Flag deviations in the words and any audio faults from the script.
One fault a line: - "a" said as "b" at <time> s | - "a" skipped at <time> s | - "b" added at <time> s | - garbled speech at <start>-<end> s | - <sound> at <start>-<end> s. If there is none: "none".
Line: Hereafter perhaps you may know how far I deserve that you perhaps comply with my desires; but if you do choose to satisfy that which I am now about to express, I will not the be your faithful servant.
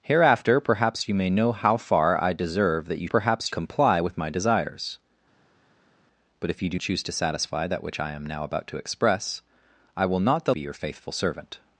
none